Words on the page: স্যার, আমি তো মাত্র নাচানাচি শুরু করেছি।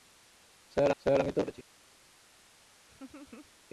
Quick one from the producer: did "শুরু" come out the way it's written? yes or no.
no